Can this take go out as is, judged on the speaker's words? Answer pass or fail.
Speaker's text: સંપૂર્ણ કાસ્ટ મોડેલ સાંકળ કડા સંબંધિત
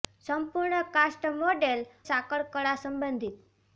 pass